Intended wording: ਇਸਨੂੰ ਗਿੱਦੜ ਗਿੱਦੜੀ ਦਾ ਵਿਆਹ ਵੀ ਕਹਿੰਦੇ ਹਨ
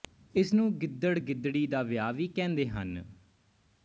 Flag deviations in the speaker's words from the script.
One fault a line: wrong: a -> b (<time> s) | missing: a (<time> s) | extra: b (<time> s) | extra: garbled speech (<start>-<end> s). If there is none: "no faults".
no faults